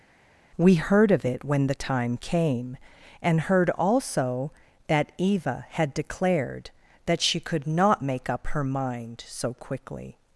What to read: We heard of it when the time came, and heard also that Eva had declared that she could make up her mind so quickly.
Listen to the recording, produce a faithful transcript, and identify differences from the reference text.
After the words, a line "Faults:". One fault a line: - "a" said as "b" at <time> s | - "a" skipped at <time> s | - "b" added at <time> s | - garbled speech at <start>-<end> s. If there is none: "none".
We heard of it when the time came, and heard also that Eva had declared that she could not make up her mind so quickly.
Faults:
- "not" added at 7.7 s